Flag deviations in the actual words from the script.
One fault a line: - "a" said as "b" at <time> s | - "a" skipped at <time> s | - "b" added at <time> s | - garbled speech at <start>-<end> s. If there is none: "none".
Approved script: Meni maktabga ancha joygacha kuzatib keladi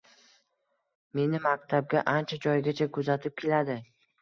none